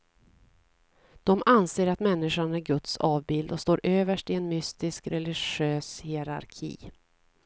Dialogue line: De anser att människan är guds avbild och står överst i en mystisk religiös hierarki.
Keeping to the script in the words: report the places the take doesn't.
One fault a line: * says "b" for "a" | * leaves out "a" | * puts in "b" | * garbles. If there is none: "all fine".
all fine